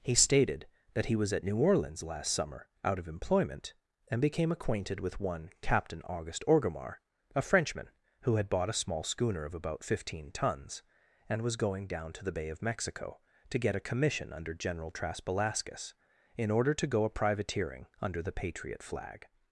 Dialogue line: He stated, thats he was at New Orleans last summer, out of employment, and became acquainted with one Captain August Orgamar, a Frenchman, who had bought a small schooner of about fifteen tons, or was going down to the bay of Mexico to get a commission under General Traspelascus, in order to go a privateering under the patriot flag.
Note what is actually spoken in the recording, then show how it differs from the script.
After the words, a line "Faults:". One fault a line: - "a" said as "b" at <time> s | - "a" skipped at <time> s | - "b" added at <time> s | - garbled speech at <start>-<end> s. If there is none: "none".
He stated, that he was at New Orleans last summer, out of employment, and became acquainted with one Captain August Orgamar, a Frenchman, who had bought a small schooner of about fifteen tons, and was going down to the bay of Mexico to get a commission under General Traspelascus, in order to go a privateering under the patriot flag.
Faults:
- "thats" said as "that" at 0.9 s
- "or" said as "and" at 11.3 s